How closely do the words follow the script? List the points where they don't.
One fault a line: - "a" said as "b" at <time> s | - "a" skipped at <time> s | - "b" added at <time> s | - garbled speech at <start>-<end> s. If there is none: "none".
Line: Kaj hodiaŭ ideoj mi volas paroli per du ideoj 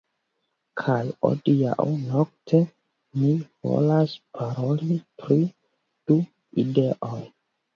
- "ideoj" said as "nokte" at 2.0 s
- "per" said as "pri" at 5.2 s